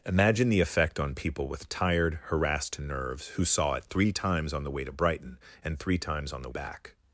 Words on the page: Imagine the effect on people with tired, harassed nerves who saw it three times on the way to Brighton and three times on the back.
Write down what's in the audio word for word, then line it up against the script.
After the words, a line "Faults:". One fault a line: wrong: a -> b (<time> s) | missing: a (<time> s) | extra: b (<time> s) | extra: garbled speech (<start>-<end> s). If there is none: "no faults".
Imagine the effect on people with tired, harassed nerves who saw it three times on the way to Brighton and three times on the back.
Faults:
no faults